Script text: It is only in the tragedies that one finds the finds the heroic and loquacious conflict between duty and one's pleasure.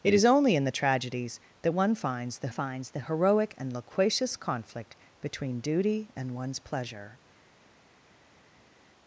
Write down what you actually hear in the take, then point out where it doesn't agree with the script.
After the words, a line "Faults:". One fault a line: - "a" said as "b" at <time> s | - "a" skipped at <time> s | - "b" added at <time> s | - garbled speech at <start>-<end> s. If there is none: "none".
It is only in the tragedies that one finds the finds the heroic and loquacious conflict between duty and one's pleasure.
Faults:
none